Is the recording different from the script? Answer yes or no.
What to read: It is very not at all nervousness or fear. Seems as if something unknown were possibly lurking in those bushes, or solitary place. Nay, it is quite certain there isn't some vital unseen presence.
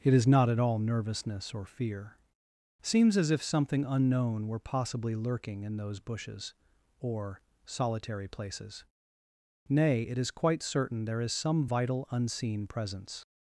yes